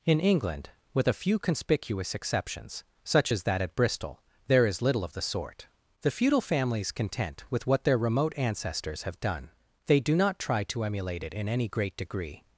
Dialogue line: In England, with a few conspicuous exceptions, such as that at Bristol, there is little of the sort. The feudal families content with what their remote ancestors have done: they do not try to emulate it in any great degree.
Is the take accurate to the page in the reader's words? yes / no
yes